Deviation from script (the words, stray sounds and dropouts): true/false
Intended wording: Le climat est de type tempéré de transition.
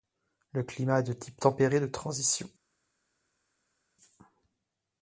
false